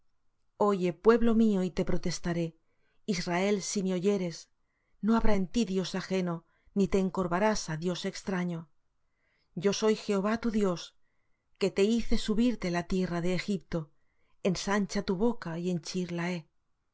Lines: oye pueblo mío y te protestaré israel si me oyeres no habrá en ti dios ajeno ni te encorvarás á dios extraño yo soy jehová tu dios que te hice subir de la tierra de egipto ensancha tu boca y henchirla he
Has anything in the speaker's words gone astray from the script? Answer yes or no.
no